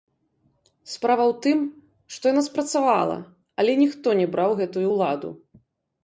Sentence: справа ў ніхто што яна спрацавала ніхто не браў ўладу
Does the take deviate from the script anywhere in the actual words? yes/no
yes